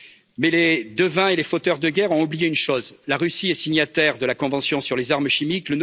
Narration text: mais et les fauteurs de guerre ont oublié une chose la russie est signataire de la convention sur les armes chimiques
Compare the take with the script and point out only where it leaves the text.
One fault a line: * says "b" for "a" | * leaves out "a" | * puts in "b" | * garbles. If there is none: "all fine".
* puts in "les devins"